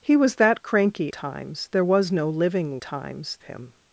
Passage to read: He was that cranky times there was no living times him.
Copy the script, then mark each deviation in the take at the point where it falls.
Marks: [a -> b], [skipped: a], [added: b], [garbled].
He was that cranky times there was no living times him.